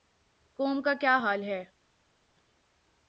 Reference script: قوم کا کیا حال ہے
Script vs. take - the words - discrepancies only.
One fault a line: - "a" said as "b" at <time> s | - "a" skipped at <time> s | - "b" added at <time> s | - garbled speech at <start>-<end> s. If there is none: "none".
none